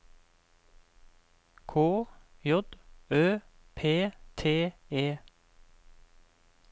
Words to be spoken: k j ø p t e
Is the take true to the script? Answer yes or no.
yes